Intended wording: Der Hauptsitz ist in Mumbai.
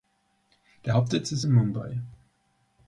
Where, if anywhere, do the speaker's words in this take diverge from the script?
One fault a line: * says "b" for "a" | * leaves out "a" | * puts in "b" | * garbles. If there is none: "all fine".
all fine